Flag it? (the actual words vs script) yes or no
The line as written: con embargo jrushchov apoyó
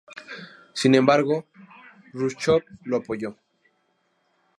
yes